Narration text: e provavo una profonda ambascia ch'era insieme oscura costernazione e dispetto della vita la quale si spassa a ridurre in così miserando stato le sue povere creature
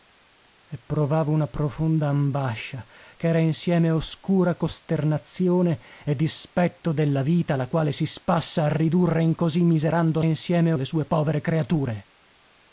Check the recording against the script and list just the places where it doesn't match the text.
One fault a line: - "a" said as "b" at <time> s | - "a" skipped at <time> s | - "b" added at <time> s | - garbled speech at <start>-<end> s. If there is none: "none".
- "stato" said as "insieme" at 10.2 s